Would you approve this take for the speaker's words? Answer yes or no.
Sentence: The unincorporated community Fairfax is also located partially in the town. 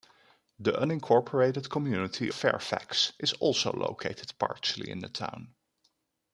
yes